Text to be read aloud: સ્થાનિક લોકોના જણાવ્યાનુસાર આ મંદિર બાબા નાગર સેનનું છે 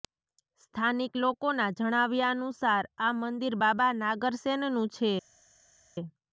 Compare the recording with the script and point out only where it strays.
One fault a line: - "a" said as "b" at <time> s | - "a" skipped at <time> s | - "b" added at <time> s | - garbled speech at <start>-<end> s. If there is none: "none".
none